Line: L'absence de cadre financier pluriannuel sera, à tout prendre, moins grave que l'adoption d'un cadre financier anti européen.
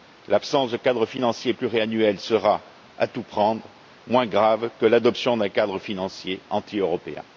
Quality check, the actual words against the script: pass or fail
pass